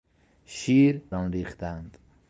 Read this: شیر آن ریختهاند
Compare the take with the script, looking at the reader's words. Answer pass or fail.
pass